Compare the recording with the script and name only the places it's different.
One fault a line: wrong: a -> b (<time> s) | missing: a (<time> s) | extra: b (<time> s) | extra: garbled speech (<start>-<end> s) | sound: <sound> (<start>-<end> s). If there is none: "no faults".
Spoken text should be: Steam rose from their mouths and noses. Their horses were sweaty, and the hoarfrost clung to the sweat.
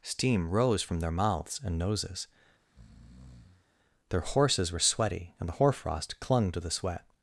sound: breath (2.6-3.7 s)